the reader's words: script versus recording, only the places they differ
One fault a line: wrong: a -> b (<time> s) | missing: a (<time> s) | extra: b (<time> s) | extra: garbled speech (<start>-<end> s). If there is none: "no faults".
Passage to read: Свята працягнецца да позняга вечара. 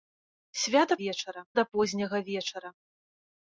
wrong: працягнецца -> вечара (1.0 s)